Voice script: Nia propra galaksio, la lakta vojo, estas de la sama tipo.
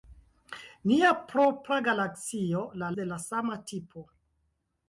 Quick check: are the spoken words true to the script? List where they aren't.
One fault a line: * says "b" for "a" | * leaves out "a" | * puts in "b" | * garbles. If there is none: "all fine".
* leaves out "lakta vojo estas"